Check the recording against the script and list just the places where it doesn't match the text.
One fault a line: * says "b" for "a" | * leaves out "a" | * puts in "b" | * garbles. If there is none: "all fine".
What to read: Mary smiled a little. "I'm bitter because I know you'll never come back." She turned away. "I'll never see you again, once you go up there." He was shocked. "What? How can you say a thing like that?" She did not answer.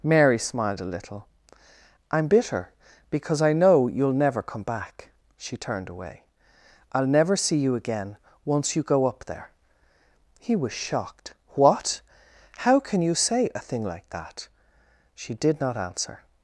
all fine